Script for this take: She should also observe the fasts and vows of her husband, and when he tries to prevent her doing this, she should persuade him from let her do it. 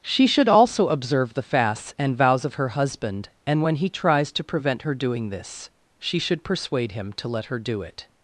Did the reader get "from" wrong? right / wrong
wrong